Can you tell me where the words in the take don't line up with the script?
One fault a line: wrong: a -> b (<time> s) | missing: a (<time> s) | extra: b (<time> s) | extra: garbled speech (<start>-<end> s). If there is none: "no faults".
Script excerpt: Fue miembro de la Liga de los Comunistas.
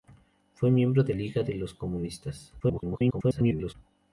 missing: la (1.1 s)
extra: garbled speech (2.6-3.7 s)